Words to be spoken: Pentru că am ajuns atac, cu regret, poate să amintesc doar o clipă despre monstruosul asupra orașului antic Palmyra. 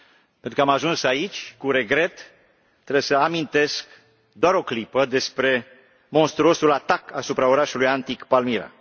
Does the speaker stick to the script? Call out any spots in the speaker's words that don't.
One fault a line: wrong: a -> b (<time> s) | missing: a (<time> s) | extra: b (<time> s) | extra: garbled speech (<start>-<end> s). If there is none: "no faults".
wrong: atac -> aici (1.0 s)
wrong: poate -> trebuie (2.8 s)
extra: atac (6.7 s)